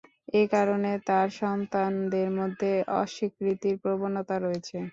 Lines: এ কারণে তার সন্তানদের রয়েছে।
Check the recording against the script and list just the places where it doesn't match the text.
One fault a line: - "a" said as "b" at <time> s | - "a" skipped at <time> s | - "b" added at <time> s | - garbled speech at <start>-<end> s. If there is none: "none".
- "মধ্যে অস্বীকৃতির প্রবণতা" added at 2.4 s